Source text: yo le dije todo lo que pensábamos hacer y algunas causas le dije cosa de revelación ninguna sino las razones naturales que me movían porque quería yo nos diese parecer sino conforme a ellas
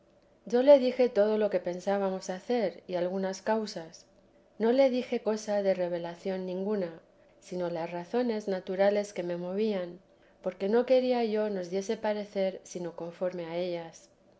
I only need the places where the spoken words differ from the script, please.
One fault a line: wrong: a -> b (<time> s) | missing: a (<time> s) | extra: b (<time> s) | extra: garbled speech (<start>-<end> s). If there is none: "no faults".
extra: no (4.6 s)
extra: no (10.7 s)